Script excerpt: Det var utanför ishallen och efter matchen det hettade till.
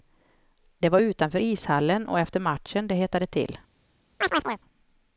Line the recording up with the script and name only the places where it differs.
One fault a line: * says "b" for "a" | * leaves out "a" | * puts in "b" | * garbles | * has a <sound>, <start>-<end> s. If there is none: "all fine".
* has a chirp, 4.2-4.6 s